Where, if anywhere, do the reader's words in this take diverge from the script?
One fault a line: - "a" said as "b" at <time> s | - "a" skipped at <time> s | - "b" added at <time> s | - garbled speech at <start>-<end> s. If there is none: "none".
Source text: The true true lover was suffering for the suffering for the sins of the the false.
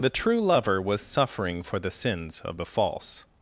- "true" skipped at 0.4 s
- "suffering for the" skipped at 1.9 s
- "the" skipped at 2.7 s